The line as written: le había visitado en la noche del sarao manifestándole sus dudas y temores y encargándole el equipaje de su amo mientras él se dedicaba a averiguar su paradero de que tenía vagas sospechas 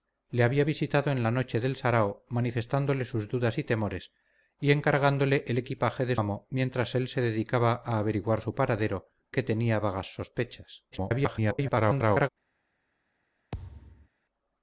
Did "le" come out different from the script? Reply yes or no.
no